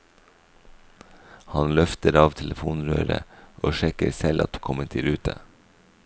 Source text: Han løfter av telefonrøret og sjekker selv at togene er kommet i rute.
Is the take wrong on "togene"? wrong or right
wrong